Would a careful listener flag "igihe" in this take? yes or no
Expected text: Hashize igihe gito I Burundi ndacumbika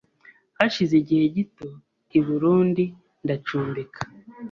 no